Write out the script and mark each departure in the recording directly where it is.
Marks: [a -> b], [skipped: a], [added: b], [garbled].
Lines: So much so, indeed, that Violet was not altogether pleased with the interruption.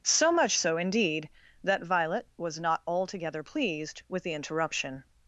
So much so, indeed, that Violet was not altogether pleased with the interruption.